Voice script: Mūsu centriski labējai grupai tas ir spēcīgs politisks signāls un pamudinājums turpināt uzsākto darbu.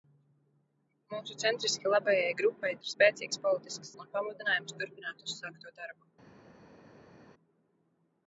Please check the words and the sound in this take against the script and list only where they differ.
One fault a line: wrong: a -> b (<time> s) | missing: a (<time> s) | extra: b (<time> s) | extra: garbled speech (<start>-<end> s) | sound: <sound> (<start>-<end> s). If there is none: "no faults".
missing: tas (2.7 s)
missing: signāls (3.9 s)